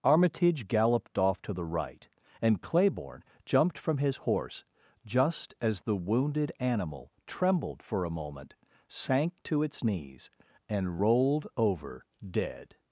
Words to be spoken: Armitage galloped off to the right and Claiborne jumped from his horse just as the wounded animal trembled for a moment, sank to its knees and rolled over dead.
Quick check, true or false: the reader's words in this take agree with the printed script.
true